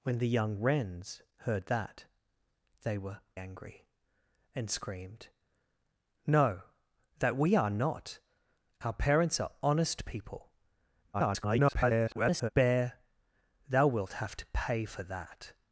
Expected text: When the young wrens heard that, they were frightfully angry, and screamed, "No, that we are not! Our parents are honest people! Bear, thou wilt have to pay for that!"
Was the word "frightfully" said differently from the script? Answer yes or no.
yes